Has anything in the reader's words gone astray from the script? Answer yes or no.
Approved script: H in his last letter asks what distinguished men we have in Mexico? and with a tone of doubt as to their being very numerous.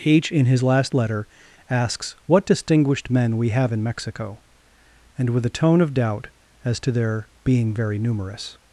no